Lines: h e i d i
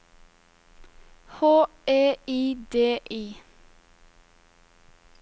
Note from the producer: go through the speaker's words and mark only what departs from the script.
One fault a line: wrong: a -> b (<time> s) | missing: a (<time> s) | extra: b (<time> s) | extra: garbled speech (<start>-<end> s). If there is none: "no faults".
no faults